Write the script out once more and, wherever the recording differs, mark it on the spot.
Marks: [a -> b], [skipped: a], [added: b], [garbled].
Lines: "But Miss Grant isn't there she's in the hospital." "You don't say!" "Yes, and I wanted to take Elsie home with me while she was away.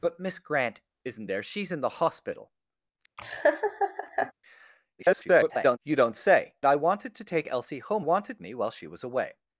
"But Miss Grant isn't there she's in the hospital." [garbled] "You don't say!" [skipped: "Yes, and] I wanted to take Elsie home [with -> wanted] me while she was away.